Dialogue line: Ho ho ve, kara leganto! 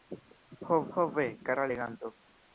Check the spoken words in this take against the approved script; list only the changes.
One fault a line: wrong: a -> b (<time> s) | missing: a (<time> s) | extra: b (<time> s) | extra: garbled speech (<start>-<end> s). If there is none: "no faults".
no faults